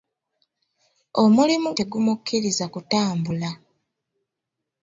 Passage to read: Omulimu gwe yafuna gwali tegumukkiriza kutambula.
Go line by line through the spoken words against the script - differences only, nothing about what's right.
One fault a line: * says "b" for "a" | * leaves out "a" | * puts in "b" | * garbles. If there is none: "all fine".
* leaves out "gwe yafuna gwali"